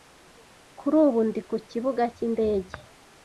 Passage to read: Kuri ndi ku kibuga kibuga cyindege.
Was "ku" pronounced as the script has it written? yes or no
yes